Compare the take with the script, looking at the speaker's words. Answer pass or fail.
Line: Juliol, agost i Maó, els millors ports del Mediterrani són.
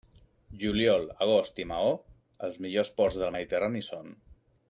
pass